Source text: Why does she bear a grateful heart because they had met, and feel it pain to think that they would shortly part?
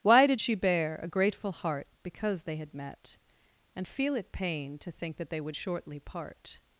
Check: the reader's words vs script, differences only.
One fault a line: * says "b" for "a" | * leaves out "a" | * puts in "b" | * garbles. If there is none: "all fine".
* says "did" for "does"